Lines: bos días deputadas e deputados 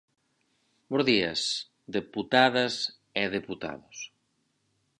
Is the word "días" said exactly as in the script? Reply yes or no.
yes